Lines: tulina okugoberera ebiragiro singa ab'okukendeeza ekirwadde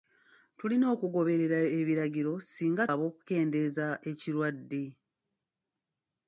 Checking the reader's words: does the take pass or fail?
pass